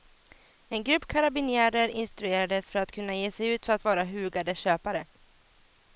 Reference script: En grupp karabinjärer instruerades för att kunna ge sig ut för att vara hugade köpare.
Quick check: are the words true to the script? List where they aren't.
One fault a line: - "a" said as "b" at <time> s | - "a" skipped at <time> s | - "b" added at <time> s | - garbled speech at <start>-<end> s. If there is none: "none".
none